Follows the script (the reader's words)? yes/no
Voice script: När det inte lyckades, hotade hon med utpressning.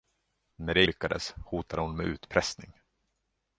no